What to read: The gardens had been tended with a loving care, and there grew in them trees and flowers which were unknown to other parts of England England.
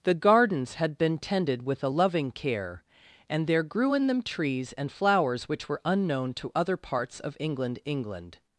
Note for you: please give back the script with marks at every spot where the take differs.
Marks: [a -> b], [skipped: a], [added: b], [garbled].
The gardens had been tended with a loving care, and there grew in them trees and flowers which were unknown to other parts of England England.